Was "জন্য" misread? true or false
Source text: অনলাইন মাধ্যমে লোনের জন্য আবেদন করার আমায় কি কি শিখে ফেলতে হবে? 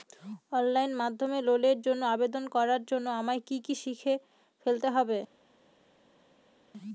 false